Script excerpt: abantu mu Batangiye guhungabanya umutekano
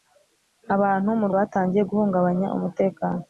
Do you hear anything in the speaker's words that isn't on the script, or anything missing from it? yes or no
no